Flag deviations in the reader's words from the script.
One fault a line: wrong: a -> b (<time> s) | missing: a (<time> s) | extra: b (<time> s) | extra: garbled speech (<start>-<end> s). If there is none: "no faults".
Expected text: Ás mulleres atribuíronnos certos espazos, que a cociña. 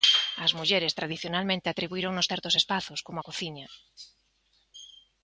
extra: tradicionalmente (1.0 s)
wrong: que -> como (3.1 s)